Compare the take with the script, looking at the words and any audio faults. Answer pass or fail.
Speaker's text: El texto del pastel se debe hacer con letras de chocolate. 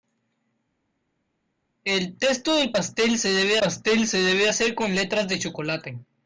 fail